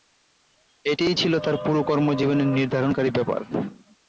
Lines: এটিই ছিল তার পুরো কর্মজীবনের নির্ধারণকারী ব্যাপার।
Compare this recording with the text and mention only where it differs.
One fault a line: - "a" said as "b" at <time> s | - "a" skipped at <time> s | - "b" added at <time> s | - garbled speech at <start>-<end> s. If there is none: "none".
none